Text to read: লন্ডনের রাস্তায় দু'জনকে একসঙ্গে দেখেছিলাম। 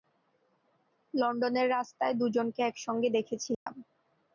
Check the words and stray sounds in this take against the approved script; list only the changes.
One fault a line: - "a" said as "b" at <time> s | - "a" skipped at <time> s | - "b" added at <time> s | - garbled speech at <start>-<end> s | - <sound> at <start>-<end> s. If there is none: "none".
- dropout at 3.5-3.7 s